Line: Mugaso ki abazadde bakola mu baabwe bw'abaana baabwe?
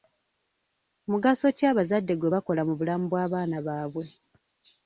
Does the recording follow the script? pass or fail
fail